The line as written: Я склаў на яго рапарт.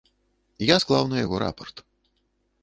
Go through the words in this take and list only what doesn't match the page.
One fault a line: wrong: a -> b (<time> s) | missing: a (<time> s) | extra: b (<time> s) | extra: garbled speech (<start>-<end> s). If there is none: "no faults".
no faults